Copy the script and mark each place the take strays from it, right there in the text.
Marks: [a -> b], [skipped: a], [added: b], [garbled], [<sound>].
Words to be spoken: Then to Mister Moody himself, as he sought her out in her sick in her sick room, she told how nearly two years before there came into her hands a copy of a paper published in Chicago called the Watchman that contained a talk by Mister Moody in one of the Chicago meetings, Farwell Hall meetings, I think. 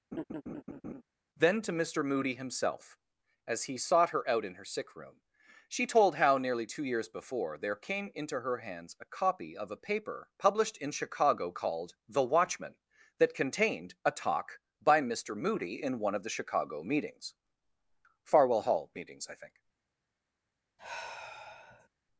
[laugh] Then to Mister Moody himself, as he sought her out in her sick [skipped: in her sick] room, she told how nearly two years before there came into her hands a copy of a paper published in Chicago called the Watchman that contained a talk by Mister Moody in one of the Chicago meetings, Farwell Hall meetings, I think. [sigh]